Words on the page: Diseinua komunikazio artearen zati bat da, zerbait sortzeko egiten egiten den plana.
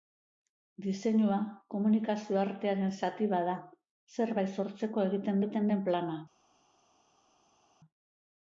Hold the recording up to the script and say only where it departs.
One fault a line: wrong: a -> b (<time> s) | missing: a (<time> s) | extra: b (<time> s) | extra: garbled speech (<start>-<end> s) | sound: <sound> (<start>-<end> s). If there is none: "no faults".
no faults